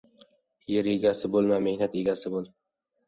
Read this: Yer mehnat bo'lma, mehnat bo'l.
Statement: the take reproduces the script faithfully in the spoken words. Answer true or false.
false